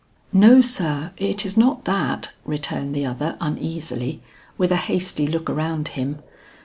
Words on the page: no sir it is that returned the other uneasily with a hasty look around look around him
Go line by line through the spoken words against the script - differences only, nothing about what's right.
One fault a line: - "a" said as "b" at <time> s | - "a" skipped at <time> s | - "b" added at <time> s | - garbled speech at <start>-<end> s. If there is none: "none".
- "not" added at 1.6 s
- "look around" skipped at 5.9 s